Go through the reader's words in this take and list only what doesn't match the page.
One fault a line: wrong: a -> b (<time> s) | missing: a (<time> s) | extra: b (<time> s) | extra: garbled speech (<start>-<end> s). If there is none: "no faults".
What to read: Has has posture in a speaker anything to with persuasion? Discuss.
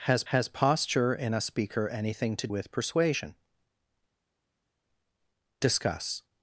no faults